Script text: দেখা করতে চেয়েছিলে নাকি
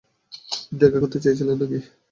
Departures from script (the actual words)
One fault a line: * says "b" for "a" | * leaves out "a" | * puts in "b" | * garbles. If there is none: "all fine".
all fine